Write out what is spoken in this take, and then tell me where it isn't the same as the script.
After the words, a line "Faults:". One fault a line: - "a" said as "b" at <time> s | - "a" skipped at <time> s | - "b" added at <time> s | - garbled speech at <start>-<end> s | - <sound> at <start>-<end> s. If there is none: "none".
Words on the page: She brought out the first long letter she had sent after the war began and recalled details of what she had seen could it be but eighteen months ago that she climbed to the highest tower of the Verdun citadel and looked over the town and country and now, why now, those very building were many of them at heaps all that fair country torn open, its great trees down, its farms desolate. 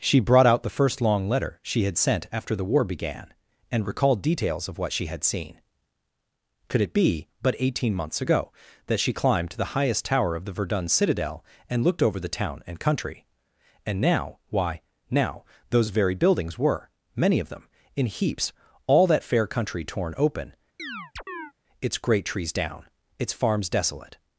She brought out the first long letter she had sent after the war began and recalled details of what she had seen could it be but eighteen months ago that she climbed to the highest tower of the Verdun citadel and looked over the town and country and now, why now, those very buildings were many of them in heaps all that fair country torn open, its great trees down, its farms desolate.
Faults:
- "building" said as "buildings" at 16.1 s
- "at" said as "in" at 17.9 s
- chirp at 20.8-21.5 s